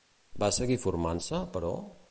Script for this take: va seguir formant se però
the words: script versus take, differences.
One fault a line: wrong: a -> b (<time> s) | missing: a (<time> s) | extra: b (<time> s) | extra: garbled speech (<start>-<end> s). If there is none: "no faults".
no faults